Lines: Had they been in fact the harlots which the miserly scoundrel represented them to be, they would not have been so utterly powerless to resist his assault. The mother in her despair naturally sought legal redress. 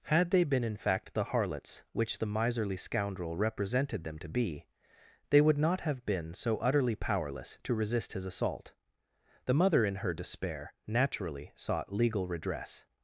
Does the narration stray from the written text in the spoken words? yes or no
no